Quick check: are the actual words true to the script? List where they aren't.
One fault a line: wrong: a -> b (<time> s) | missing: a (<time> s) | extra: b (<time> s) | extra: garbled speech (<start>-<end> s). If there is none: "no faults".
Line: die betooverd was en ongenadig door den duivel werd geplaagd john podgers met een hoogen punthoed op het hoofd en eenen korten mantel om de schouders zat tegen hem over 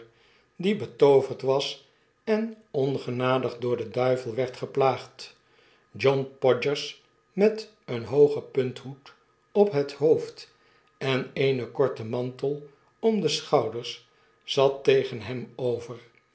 no faults